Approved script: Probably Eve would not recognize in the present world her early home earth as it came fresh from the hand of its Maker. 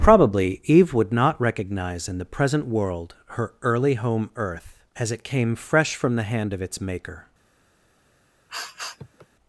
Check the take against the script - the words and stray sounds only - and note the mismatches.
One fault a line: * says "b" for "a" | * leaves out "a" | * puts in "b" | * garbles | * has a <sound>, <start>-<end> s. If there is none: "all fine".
* has a sniff, 8.5-9.3 s